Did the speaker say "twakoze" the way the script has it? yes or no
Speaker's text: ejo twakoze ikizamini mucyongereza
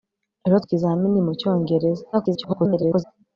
no